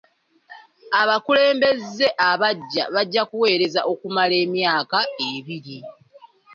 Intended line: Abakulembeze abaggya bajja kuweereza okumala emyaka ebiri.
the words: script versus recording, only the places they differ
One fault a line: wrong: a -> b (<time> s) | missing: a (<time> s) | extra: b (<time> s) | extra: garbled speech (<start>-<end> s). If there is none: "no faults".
no faults